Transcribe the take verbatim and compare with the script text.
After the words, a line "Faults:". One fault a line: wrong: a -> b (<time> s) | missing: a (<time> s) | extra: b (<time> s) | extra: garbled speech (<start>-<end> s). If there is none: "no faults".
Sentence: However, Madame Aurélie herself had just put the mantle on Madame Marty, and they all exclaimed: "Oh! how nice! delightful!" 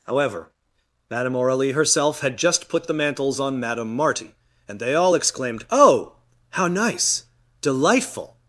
However, Madame Aurélie herself had just put the mantles on Madame Marty, and they all exclaimed: "Oh! how nice! delightful!"
Faults:
wrong: mantle -> mantles (2.9 s)